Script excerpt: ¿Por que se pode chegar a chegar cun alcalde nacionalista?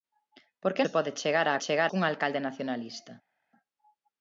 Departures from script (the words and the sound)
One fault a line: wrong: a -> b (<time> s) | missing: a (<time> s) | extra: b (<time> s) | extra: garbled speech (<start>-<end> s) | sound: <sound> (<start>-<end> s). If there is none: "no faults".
no faults